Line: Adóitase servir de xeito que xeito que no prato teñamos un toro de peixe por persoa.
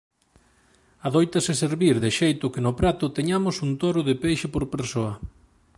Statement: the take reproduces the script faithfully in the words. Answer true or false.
false